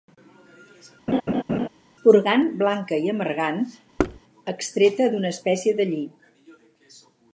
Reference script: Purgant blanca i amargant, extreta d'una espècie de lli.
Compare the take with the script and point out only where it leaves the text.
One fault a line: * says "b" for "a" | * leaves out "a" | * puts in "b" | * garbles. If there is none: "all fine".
all fine